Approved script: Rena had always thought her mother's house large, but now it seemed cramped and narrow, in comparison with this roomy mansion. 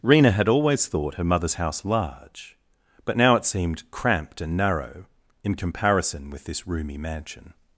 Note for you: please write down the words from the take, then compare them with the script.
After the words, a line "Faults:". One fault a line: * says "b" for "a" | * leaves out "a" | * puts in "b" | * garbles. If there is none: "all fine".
Rena had always thought her mother's house large, but now it seemed cramped and narrow, in comparison with this roomy mansion.
Faults:
all fine